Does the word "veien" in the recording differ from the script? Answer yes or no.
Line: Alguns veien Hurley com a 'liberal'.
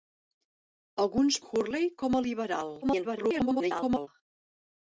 yes